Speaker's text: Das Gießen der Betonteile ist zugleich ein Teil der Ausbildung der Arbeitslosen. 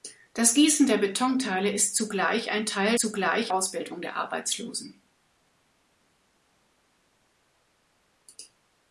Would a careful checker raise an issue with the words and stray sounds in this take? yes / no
yes